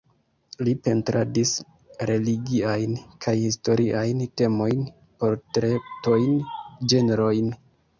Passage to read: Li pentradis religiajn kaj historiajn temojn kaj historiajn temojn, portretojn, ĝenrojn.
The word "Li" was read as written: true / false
true